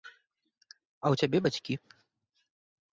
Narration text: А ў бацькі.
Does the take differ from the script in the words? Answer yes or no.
yes